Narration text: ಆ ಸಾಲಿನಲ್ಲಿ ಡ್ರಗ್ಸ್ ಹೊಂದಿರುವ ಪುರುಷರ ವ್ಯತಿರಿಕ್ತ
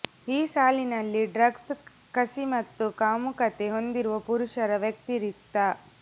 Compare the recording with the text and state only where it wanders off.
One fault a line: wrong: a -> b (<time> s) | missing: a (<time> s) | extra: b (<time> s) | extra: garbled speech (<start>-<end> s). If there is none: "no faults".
wrong: ಆ -> ಈ (0.3 s)
extra: ಕಸಿ ಮತ್ತು ಕಾಮುಕತೆ (2.1 s)